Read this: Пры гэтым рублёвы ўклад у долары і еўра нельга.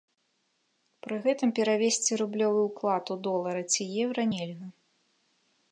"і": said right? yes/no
no